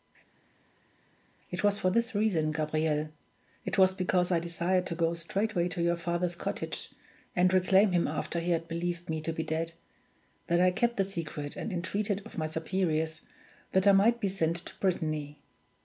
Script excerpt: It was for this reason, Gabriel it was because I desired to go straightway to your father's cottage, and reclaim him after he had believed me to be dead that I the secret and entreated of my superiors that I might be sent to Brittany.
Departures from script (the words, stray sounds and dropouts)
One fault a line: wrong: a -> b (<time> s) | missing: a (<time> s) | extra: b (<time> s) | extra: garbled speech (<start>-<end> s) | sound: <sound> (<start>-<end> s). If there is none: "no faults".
extra: kept (10.7 s)